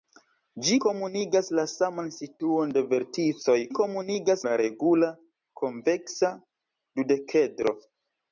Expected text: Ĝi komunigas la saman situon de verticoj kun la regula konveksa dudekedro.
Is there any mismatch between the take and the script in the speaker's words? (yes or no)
yes